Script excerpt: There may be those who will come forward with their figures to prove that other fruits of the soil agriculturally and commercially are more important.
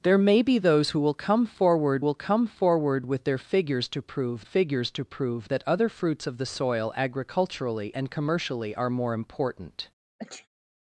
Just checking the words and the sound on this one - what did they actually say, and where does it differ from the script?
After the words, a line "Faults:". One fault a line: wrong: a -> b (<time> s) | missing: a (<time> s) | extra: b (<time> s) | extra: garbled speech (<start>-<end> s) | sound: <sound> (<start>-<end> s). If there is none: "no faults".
There may be those who will come forward will come forward with their figures to prove figures to prove that other fruits of the soil agriculturally and commercially are more important.
Faults:
extra: will come forward (2.0 s)
extra: figures to prove (4.4 s)
sound: sneeze (10.2-10.5 s)